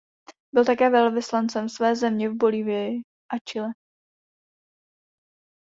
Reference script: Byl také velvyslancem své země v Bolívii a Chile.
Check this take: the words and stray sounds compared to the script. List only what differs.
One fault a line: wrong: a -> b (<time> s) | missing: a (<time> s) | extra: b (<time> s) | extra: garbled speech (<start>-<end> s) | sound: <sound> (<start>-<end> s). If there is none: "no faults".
no faults